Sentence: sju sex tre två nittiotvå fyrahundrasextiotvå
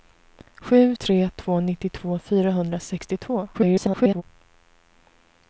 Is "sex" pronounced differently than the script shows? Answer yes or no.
yes